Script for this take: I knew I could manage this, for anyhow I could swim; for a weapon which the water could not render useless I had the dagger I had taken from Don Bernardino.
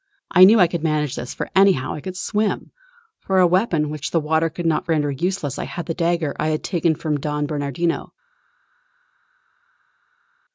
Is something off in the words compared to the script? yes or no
no